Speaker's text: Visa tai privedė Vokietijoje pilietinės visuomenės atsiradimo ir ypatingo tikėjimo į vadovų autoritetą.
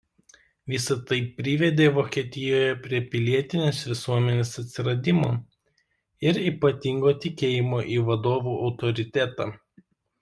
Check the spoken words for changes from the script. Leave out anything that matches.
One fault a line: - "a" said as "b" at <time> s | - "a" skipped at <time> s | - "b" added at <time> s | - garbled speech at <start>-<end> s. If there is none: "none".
- "prie" added at 2.9 s